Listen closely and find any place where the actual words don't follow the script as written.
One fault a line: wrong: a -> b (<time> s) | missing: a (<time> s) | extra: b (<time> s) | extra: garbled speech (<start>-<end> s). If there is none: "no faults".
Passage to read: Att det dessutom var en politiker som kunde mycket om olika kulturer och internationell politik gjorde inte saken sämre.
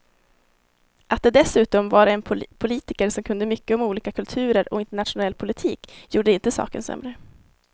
no faults